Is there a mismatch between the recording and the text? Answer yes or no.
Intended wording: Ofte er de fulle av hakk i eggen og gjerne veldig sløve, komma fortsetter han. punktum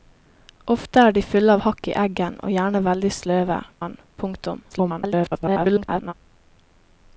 yes